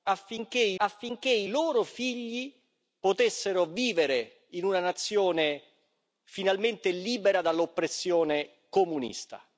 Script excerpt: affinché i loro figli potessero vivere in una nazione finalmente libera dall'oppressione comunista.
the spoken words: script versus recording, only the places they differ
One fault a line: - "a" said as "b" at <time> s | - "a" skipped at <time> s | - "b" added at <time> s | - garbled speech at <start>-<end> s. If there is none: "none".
- "affinché i" added at 0.8 s